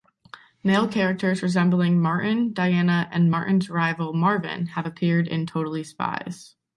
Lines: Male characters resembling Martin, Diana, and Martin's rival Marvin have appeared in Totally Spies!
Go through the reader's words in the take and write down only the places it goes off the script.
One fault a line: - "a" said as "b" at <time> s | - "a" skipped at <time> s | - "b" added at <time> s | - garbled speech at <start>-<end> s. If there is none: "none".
none